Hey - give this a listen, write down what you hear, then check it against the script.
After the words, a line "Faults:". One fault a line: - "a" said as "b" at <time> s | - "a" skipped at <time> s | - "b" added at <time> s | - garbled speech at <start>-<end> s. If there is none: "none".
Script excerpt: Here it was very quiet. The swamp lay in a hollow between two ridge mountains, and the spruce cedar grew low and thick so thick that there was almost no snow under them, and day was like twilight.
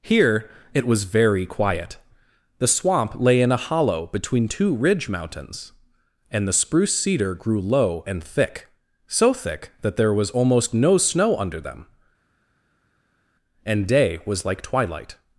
Here it was very quiet. The swamp lay in a hollow between two ridge mountains, and the spruce cedar grew low and thick so thick that there was almost no snow under them, and day was like twilight.
Faults:
none